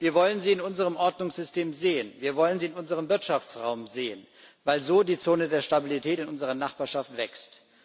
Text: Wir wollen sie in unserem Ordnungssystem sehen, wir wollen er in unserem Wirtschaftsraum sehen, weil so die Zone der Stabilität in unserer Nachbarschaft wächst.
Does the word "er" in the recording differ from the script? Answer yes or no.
yes